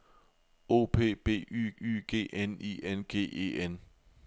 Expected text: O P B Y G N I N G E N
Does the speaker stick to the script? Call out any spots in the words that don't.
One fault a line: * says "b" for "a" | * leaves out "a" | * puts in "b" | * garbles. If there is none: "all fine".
* puts in "Y"